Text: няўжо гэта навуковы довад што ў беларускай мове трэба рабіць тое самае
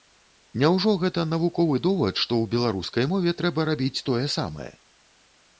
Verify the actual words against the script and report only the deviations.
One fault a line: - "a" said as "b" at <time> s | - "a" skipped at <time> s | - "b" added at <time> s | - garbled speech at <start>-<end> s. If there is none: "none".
none